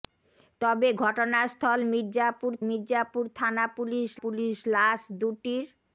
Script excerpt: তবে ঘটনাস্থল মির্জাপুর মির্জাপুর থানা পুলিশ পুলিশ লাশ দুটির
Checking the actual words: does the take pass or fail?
pass